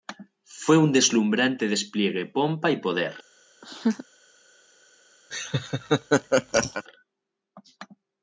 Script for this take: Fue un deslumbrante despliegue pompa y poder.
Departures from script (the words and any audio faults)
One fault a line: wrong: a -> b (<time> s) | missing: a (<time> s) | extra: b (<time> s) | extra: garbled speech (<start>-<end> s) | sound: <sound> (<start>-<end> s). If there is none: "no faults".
sound: laugh (3.6-4.0 s)
sound: laugh (5.3-6.8 s)